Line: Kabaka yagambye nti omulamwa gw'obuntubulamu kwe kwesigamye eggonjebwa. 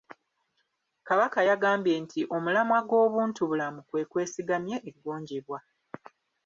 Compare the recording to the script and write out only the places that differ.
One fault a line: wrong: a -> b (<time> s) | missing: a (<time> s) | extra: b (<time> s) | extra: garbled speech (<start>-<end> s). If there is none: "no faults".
no faults